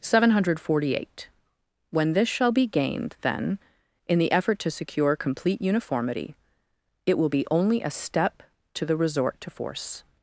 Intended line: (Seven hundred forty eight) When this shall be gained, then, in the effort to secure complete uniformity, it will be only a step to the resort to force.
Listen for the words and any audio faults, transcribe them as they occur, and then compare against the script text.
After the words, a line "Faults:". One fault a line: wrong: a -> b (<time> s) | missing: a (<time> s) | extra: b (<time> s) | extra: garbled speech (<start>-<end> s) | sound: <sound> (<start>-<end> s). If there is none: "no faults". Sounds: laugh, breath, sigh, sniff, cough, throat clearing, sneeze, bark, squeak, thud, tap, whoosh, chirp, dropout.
(Seven hundred forty eight) When this shall be gained, then, in the effort to secure complete uniformity, it will be only a step to the resort to force.
Faults:
no faults